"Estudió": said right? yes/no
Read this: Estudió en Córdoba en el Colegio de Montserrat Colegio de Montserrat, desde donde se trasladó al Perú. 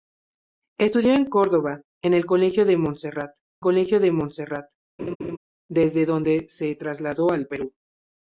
yes